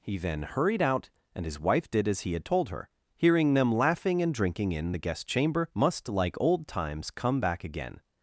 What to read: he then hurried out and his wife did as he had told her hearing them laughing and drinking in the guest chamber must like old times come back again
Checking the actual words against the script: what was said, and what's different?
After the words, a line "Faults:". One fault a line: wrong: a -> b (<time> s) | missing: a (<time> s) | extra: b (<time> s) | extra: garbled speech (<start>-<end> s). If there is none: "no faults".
he then hurried out and his wife did as he had told her hearing them laughing and drinking in the guest chamber must like old times come back again
Faults:
no faults